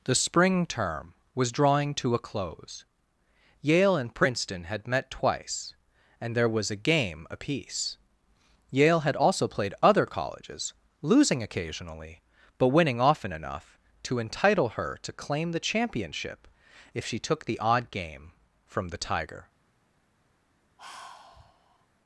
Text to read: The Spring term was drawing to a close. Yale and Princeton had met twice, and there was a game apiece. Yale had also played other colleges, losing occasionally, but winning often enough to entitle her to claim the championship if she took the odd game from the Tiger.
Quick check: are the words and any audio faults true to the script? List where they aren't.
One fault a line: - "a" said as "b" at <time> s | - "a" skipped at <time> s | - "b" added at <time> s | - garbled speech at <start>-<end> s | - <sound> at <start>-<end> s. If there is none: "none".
- sigh at 20.8-21.9 s